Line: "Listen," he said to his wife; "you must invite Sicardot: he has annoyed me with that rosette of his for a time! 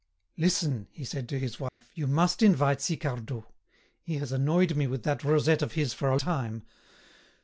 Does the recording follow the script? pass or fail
pass